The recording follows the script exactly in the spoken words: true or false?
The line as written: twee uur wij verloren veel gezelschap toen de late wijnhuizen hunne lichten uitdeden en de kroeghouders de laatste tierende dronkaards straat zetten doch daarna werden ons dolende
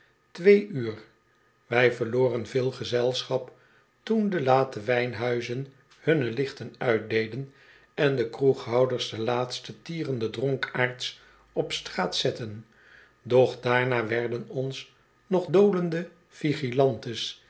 false